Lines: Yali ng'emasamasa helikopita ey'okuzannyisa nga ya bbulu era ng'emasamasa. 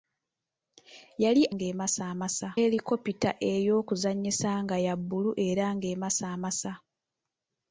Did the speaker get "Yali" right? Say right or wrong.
right